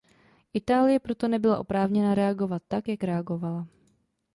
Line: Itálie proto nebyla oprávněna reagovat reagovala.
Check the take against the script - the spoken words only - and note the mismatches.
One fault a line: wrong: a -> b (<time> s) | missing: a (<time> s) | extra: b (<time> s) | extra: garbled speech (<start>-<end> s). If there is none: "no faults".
extra: tak jak (2.7 s)